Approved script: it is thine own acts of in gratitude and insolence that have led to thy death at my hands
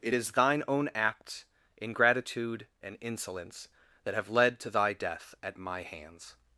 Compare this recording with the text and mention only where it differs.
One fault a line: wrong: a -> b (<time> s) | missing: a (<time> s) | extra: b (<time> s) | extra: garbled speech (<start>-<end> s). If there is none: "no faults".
wrong: of in gratitude -> ingratitude (1.8 s)